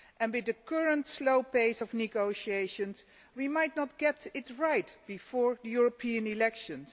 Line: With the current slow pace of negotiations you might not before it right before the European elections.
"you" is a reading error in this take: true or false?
true